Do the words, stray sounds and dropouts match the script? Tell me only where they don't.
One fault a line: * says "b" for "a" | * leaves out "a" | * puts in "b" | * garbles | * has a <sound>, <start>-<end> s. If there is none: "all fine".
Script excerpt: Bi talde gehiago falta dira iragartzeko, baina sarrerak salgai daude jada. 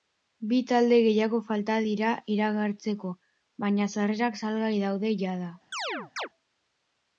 * has a chirp, 5.7-6.3 s